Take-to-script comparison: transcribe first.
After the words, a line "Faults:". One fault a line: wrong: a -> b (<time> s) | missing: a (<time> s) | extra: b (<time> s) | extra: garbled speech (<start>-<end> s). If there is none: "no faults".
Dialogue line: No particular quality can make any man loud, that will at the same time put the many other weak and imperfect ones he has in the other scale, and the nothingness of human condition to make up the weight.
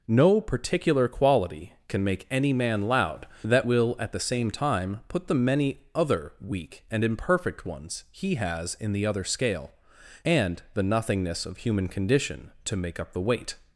No particular quality can make any man loud, that will at the same time put the many other weak and imperfect ones he has in the other scale, and the nothingness of human condition to make up the weight.
Faults:
no faults